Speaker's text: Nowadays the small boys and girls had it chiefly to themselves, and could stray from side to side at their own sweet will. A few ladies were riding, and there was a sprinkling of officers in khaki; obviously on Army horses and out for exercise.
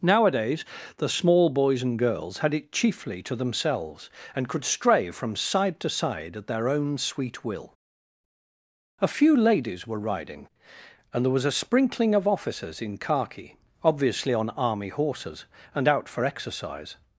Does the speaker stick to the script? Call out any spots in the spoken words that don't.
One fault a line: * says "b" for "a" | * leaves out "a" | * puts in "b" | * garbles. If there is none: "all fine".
all fine